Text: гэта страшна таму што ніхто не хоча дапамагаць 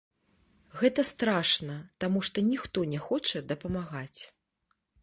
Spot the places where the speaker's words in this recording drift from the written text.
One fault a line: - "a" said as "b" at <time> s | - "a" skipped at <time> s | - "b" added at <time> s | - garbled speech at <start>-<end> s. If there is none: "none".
none